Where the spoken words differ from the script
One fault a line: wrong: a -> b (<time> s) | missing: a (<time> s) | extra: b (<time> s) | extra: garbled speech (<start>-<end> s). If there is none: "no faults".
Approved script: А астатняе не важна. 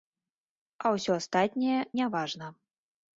extra: ўсё (0.9 s)